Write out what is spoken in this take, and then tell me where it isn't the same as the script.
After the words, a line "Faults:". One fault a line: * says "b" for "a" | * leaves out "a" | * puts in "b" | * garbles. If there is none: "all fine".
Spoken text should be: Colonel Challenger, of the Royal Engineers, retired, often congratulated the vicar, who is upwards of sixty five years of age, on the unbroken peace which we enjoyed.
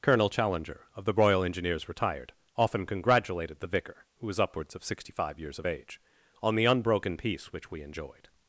Colonel Challenger, of the Royal Engineers, retired, often congratulated the vicar, who was upwards of sixty five years of age, on the unbroken peace which we enjoyed.
Faults:
* says "was" for "is"